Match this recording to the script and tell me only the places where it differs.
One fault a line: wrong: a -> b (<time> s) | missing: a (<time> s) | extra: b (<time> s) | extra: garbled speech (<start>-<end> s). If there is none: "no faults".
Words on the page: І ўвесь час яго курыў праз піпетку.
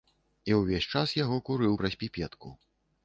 no faults